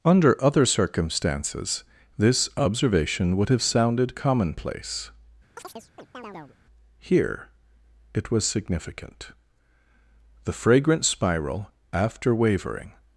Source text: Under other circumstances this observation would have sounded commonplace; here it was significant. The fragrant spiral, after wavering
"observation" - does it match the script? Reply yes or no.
yes